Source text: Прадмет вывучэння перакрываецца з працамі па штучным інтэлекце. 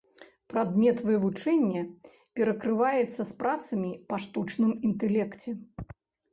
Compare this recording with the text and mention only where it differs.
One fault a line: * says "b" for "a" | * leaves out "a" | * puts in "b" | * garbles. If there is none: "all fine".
all fine